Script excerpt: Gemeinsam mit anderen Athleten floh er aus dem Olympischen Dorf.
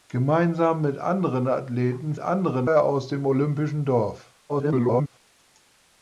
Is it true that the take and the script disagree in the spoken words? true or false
true